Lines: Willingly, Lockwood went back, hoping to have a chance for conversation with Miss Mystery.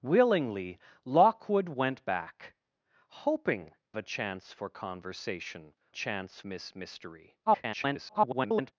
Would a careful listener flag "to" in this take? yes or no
yes